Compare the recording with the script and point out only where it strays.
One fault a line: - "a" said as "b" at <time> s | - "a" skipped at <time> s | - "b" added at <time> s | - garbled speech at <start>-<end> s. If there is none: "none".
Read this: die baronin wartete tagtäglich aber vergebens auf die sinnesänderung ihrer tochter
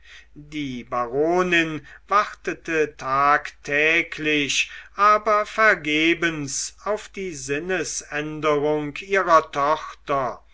none